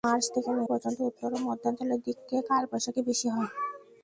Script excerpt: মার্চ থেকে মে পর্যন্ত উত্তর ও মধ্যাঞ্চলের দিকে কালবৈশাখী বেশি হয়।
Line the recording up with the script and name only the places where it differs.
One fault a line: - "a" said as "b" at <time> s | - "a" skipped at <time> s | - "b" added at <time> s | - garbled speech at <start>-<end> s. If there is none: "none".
none